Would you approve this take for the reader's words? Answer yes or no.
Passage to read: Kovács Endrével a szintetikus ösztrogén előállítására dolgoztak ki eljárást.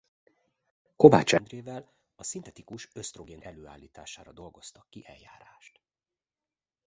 yes